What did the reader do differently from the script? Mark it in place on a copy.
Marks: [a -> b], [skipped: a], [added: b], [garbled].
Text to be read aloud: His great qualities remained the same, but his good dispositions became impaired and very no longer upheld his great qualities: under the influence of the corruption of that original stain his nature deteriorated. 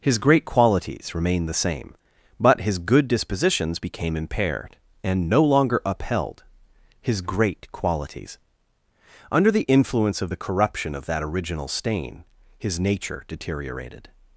His great qualities remained the same, but his good dispositions became impaired and [skipped: very] no longer upheld his great qualities: under the influence of the corruption of that original stain his nature deteriorated.